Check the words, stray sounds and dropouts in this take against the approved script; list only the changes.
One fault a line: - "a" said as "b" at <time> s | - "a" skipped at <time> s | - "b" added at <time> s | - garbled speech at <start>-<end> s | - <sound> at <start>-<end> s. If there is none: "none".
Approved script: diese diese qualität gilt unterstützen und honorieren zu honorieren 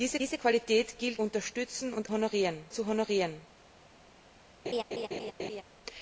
- laugh at 4.6-5.6 s